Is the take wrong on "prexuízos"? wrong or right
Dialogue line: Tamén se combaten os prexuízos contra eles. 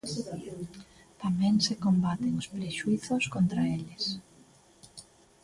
right